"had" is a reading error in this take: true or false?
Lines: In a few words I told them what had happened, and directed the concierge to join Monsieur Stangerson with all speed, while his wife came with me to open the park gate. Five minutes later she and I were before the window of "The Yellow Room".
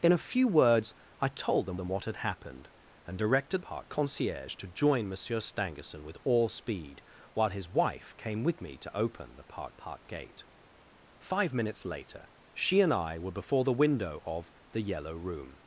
false